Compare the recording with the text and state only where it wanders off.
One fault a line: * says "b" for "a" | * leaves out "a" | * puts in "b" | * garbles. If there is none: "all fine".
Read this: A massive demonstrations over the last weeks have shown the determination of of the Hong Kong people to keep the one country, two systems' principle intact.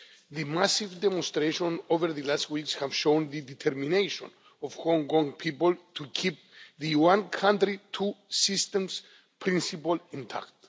* says "The" for "A"
* leaves out "of"